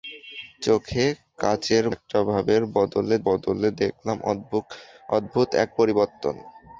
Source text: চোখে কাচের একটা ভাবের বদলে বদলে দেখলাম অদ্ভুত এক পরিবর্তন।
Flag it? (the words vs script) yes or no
no